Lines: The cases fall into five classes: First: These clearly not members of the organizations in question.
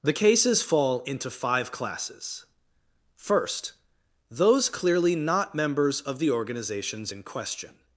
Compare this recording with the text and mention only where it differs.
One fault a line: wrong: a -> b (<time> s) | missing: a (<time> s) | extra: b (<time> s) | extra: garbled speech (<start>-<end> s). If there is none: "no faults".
wrong: These -> Those (4.3 s)